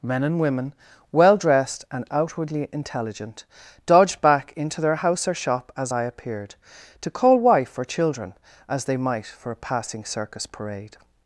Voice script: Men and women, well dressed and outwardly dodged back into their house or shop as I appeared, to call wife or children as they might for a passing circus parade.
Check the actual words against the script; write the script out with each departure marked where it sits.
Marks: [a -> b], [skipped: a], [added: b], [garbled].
Men and women, well dressed and outwardly [added: intelligent] dodged back into their house or shop as I appeared, to call wife or children as they might for a passing circus parade.